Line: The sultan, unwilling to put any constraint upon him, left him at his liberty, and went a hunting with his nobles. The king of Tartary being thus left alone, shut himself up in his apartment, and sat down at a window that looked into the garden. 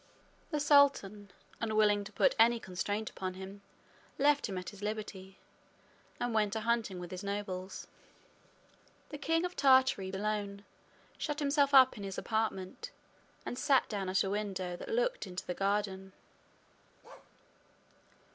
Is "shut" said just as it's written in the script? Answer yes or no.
yes